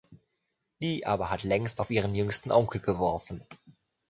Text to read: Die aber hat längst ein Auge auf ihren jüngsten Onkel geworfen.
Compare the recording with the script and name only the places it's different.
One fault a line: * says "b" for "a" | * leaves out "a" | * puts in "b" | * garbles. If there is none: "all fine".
* leaves out "ein Auge"